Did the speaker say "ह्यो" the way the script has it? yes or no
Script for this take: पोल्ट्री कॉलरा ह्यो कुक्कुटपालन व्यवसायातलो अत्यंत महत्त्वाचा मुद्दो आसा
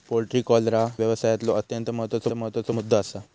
no